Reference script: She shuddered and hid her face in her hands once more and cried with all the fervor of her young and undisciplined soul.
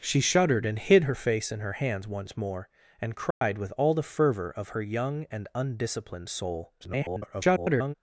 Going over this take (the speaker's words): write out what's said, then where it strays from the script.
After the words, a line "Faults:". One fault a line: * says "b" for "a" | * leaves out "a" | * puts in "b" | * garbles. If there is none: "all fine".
She shuddered and hid her face in her hands once more and cried with all the fervor of her young and undisciplined soul. [garbled]
Faults:
* garbles